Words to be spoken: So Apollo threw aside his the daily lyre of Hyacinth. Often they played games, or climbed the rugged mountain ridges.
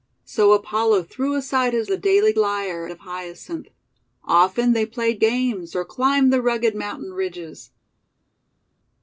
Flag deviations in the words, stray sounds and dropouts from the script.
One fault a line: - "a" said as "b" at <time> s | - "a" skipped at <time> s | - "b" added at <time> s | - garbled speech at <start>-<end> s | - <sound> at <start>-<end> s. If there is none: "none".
none